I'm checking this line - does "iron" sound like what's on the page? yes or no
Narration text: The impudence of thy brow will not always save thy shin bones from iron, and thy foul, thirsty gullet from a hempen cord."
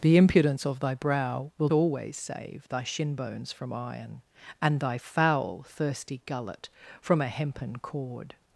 yes